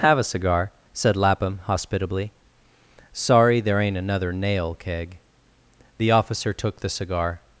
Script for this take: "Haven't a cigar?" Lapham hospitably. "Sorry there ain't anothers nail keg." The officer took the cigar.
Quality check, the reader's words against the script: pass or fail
fail